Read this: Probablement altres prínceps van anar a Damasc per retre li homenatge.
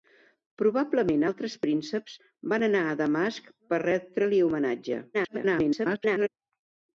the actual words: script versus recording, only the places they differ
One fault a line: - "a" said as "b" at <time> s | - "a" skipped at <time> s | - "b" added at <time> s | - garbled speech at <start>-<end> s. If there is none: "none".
- garbled speech at 5.1-6.3 s